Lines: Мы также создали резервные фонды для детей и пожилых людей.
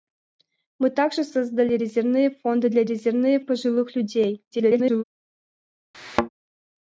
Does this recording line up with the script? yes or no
no